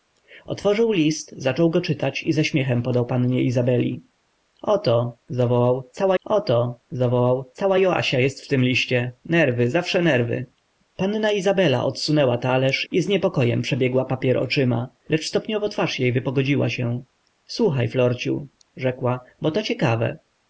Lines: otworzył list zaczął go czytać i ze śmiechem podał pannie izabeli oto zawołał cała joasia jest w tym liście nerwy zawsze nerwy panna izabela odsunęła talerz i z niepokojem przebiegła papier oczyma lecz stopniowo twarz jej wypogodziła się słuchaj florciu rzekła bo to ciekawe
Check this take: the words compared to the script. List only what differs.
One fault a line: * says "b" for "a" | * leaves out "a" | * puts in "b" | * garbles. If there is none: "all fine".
* puts in "oto zawołał cała"